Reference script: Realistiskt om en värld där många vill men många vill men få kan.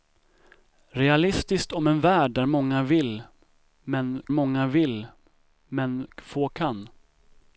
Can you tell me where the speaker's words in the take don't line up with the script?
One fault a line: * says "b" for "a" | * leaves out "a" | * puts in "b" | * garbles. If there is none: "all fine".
all fine